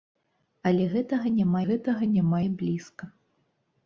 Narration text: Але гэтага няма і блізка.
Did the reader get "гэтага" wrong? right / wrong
right